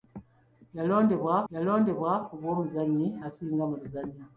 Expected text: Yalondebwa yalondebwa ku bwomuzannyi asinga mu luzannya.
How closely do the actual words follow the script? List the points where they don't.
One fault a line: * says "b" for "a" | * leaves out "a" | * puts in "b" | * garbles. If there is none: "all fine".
all fine